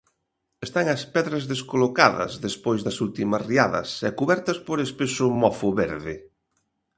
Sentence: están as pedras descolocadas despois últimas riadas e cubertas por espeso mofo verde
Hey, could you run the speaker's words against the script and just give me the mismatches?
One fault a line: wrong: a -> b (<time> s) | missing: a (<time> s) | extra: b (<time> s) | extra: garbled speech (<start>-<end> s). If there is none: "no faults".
extra: das (2.8 s)